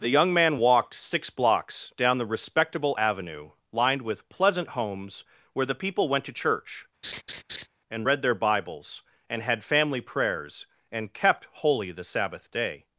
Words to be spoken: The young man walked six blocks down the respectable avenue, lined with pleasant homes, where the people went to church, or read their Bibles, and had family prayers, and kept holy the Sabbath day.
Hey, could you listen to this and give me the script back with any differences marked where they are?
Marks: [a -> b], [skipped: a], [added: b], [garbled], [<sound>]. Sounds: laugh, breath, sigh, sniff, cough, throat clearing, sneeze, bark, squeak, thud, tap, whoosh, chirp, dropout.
The young man walked six blocks down the respectable avenue, lined with pleasant homes, where the people went to church, [laugh] [or -> and] read their Bibles, and had family prayers, and kept holy the Sabbath day.